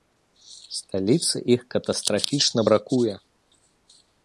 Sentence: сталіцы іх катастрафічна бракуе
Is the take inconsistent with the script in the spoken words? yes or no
no